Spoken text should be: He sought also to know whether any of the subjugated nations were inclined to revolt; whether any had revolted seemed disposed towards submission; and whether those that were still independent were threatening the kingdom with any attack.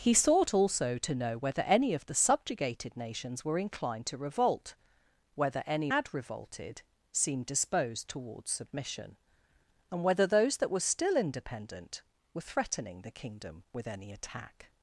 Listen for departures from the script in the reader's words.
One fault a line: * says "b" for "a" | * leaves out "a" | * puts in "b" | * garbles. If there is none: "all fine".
all fine